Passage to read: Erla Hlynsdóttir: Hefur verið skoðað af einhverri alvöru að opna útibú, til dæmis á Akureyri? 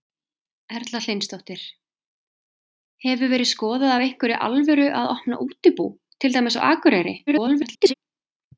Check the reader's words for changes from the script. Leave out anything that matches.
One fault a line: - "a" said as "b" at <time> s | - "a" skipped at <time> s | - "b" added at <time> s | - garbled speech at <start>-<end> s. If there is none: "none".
- garbled speech at 7.3-7.9 s